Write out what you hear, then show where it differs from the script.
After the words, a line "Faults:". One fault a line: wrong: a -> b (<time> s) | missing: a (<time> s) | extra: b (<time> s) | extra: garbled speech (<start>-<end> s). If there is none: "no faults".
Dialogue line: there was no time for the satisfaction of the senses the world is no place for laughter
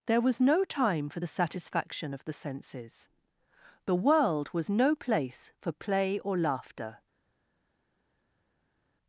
there was no time for the satisfaction of the senses the world was no place for play or laughter
Faults:
wrong: is -> was (4.5 s)
extra: play or (5.7 s)